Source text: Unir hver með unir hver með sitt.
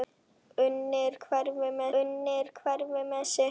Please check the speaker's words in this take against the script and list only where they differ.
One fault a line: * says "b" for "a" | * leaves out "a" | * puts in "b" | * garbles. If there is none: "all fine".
all fine